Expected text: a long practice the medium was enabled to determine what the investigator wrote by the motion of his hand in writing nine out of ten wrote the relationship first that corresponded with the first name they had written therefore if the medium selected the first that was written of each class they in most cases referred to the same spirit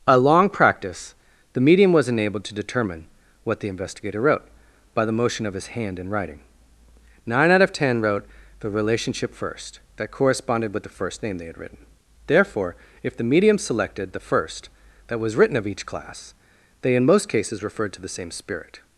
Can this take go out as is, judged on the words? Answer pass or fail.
pass